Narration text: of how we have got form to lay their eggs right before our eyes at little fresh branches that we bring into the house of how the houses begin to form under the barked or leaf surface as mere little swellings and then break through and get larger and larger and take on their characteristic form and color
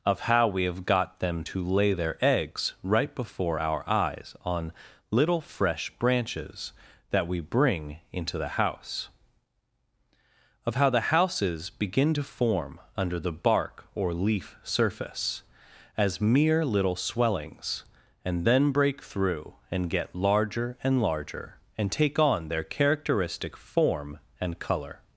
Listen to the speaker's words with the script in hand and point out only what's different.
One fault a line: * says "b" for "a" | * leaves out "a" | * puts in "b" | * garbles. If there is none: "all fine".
* says "them" for "form"
* says "on" for "at"
* says "bark" for "barked"